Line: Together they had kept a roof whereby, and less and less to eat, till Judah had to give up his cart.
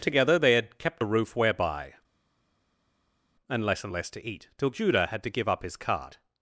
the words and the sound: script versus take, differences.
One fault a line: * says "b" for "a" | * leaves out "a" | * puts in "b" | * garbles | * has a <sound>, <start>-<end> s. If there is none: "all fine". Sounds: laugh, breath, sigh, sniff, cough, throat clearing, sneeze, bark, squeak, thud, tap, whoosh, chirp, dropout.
all fine